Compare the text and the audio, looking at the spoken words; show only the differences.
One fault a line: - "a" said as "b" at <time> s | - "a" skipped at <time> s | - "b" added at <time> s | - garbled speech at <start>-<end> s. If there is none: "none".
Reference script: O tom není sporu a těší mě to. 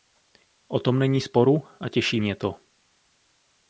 none